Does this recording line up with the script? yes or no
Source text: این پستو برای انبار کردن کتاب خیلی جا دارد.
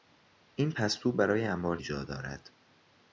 no